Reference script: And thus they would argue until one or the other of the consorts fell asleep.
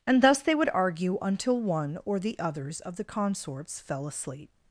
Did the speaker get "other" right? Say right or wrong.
wrong